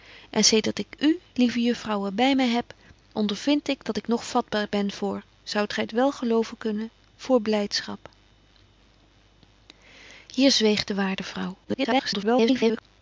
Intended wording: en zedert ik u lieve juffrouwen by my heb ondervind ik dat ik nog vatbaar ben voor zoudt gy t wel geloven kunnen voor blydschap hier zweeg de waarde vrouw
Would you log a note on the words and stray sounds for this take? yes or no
yes